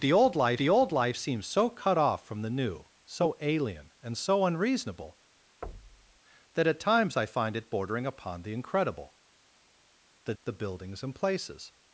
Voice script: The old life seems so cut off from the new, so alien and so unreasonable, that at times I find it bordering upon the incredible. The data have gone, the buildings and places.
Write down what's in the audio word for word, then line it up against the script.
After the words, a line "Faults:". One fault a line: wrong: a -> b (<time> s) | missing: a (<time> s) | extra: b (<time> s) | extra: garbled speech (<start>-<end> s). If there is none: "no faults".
The old life the old life seems so cut off from the new, so alien and so unreasonable, that at times I find it bordering upon the incredible. The the buildings and places.
Faults:
extra: the old life (0.6 s)
missing: data have gone (10.3 s)